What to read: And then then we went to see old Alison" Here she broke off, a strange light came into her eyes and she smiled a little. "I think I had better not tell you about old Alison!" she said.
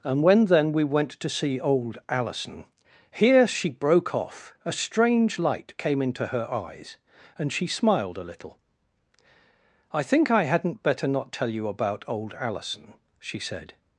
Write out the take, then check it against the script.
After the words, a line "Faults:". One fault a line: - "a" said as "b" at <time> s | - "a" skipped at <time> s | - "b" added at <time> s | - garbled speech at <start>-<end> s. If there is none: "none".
And when then we went to see old Alison" Here she broke off, a strange light came into her eyes and she smiled a little. "I think I hadn't better not tell you about old Alison!" she said.
Faults:
- "then" said as "when" at 0.2 s
- "had" said as "hadn't" at 10.4 s